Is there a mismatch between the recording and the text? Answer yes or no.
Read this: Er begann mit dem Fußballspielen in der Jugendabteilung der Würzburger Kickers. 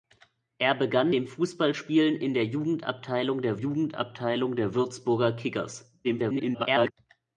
yes